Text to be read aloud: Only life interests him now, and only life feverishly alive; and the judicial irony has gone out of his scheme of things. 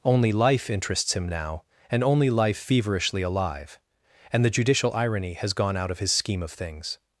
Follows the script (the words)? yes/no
yes